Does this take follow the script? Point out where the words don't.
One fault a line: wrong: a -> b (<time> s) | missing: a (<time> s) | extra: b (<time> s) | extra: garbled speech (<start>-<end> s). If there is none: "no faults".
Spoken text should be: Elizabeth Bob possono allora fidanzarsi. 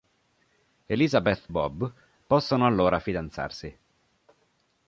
no faults